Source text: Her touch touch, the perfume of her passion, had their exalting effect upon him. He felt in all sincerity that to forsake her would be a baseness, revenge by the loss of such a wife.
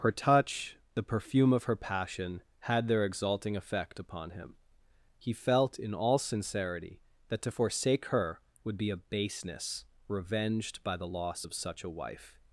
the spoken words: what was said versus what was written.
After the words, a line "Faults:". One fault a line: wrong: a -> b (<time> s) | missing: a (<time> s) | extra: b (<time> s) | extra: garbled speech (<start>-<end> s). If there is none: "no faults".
Her touch, the perfume of her passion, had their exalting effect upon him. He felt in all sincerity that to forsake her would be a baseness, revenged by the loss of such a wife.
Faults:
missing: touch (0.8 s)
wrong: revenge -> revenged (10.1 s)